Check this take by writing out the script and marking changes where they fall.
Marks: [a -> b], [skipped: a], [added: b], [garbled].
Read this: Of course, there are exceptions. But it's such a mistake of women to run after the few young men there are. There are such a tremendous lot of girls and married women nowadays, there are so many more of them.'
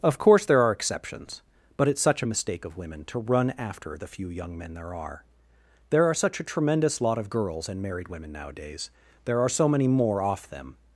Of course, there are exceptions. But it's such a mistake of women to run after the few young men there are. There are such a tremendous lot of girls and married women nowadays, there are so many more [of -> off] them.'